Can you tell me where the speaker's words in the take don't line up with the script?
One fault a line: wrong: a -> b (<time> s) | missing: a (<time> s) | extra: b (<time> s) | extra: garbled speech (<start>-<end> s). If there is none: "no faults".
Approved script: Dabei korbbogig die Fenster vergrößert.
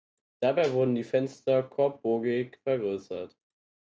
wrong: korbbogig -> wurden (0.7 s)
extra: korbbogig (1.6 s)